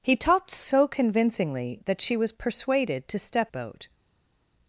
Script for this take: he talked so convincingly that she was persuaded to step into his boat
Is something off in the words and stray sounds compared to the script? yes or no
yes